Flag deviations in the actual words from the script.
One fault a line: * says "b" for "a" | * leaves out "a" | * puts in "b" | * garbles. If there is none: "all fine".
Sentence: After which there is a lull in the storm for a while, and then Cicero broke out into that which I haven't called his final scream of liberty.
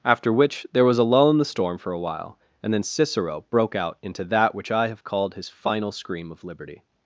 * says "was" for "is"
* says "have" for "haven't"